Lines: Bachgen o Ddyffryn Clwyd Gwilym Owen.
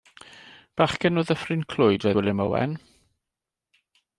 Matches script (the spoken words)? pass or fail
pass